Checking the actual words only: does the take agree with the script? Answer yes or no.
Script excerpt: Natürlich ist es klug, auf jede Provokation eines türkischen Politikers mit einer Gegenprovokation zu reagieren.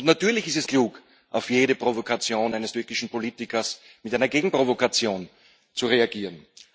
yes